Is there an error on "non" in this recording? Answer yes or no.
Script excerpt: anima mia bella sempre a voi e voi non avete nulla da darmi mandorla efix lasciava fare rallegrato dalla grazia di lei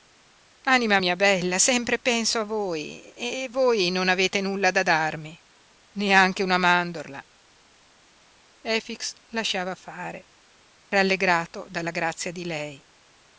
no